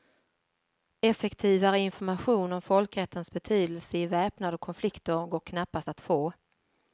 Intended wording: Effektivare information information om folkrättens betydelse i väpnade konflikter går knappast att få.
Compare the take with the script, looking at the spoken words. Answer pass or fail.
fail